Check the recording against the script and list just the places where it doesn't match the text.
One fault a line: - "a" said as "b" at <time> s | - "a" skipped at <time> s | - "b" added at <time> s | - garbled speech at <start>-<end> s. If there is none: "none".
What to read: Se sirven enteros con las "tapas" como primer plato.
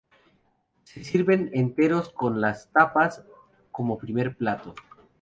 none